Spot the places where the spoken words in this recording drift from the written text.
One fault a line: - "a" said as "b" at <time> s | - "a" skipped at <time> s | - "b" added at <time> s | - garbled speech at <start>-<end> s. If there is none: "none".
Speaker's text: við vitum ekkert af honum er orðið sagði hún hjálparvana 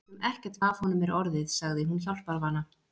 none